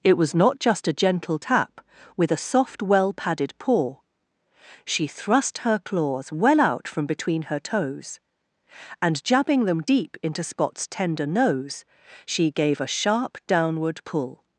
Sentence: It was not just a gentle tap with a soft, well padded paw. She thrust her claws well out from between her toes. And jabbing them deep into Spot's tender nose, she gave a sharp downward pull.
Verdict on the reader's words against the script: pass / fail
pass